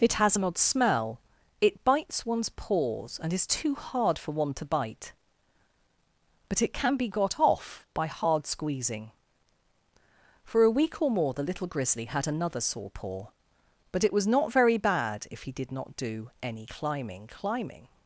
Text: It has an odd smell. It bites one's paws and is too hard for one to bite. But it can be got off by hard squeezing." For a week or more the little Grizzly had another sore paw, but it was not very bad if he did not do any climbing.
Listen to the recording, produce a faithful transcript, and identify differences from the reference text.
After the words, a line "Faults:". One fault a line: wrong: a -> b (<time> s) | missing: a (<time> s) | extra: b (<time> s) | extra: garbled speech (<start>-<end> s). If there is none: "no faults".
It has an odd smell. It bites one's paws and is too hard for one to bite. But it can be got off by hard squeezing." For a week or more the little Grizzly had another sore paw, but it was not very bad if he did not do any climbing climbing.
Faults:
extra: climbing (17.3 s)